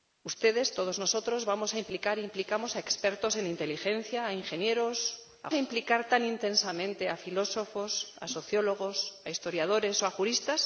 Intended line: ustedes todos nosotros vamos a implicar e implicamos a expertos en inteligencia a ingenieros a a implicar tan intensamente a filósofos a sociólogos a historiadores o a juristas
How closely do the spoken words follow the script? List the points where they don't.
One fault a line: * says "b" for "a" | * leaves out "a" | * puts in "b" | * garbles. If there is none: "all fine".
all fine